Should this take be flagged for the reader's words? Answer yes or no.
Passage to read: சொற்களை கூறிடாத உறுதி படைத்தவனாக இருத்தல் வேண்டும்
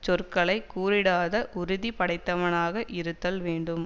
no